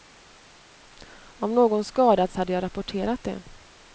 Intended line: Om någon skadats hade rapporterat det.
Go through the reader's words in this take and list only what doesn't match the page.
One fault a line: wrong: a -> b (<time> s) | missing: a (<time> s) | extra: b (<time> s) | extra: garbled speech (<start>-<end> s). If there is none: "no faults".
extra: jag (2.5 s)